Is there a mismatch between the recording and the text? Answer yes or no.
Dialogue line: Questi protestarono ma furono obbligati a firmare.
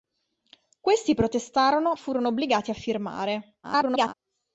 yes